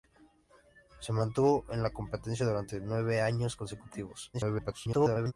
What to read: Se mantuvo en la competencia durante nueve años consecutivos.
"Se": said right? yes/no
yes